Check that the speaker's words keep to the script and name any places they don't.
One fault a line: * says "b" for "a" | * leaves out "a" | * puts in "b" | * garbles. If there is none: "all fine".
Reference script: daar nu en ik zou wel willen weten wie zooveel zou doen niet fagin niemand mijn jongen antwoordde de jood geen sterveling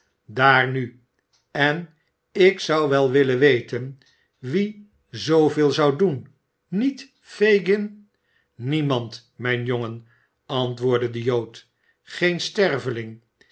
all fine